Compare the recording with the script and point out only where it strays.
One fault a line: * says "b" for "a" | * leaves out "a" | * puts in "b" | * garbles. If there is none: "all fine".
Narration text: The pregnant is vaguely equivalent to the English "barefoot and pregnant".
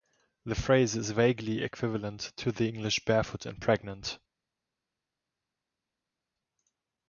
* says "phrase" for "pregnant"